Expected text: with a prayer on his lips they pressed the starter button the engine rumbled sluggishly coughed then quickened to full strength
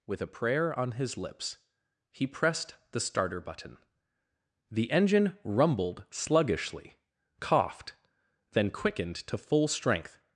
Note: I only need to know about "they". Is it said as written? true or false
false